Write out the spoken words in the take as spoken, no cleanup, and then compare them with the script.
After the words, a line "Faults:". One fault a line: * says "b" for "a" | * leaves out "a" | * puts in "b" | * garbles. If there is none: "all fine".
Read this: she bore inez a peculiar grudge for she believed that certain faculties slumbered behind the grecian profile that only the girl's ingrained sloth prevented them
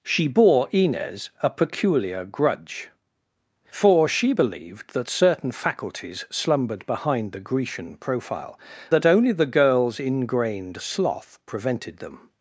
she bore inez a peculiar grudge for she believed that certain faculties slumbered behind the grecian profile that only the girl's ingrained sloth prevented them
Faults:
all fine